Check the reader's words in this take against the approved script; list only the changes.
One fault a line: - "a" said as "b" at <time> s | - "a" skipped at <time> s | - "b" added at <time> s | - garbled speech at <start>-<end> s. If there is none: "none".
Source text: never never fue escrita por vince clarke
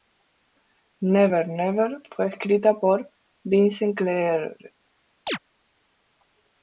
none